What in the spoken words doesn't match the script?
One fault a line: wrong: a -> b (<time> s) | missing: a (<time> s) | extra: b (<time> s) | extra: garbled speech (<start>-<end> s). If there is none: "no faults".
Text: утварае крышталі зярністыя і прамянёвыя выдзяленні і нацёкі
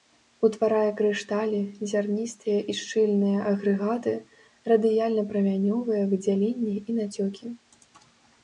extra: шчыльныя агрэгаты радыяльна (2.8 s)